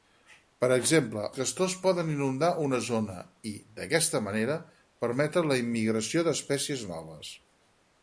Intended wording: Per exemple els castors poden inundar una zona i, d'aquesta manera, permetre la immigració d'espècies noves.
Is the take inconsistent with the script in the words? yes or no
yes